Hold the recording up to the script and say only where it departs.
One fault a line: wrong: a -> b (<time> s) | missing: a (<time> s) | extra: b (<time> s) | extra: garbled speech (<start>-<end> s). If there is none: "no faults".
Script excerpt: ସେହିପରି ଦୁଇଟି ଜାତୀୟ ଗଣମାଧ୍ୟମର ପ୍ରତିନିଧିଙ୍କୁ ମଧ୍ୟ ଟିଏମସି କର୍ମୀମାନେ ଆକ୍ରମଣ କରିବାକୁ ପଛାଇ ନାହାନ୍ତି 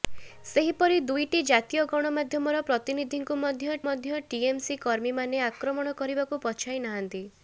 extra: ମଧ୍ୟ (3.8 s)